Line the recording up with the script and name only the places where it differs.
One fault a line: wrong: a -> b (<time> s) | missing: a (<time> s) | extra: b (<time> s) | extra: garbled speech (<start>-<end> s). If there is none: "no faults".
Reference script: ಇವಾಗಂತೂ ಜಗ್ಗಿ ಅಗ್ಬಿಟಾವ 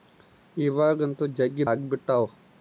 no faults